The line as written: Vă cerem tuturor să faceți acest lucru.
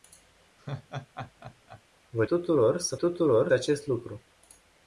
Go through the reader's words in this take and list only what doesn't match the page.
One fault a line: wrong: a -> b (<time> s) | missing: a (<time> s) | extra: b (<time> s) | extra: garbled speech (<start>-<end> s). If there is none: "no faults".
missing: cerem (2.2 s)
wrong: faceți -> tuturor (2.9 s)